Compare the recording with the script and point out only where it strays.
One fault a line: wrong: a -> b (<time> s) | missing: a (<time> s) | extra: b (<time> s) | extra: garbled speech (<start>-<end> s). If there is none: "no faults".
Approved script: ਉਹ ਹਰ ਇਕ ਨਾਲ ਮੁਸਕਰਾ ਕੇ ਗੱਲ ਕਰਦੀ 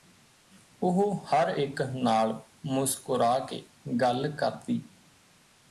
no faults